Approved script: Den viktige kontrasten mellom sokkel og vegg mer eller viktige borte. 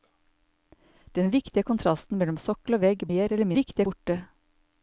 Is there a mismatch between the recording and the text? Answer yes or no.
no